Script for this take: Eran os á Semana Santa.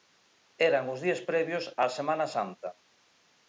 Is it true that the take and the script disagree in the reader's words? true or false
true